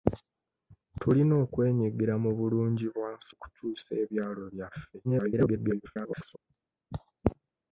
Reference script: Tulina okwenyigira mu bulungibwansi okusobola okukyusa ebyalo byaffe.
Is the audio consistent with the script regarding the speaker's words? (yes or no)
no